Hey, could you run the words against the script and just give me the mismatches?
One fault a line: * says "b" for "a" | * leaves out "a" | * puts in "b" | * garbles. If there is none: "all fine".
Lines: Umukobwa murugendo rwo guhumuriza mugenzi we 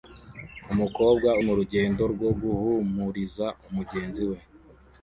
all fine